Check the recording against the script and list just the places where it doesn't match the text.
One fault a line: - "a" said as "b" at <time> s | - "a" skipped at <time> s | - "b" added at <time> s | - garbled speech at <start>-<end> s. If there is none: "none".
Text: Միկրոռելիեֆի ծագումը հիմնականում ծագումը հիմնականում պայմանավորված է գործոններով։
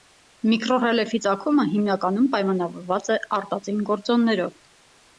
- "ծագումը հիմնականում" skipped at 2.3 s
- "արտածին" added at 3.4 s